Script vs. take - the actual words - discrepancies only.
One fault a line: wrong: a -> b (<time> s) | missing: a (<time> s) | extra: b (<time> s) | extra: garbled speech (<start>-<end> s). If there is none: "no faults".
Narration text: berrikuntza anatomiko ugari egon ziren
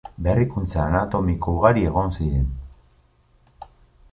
no faults